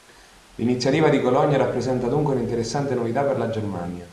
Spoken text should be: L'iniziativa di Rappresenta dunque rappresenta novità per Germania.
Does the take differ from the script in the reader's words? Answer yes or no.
yes